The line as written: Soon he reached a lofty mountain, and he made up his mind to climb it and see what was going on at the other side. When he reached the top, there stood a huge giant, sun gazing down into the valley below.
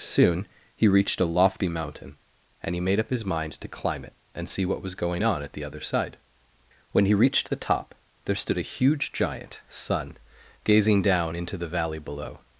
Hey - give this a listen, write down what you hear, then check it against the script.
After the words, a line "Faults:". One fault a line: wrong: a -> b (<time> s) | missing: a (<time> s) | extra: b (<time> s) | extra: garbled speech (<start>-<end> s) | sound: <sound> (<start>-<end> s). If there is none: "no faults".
Soon he reached a lofty mountain, and he made up his mind to climb it and see what was going on at the other side. When he reached the top, there stood a huge giant, sun gazing down into the valley below.
Faults:
no faults